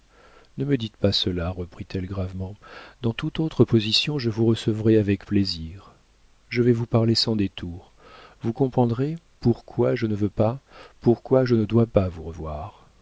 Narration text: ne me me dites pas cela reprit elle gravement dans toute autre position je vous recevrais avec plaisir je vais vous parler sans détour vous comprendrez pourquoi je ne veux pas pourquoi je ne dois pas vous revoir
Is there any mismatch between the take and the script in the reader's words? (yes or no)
yes